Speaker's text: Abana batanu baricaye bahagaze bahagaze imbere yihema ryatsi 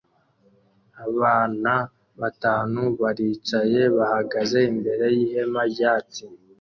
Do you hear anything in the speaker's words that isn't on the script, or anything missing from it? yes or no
yes